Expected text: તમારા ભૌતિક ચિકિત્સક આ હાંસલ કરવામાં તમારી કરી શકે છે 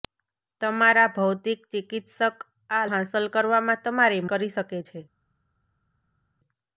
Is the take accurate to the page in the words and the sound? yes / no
yes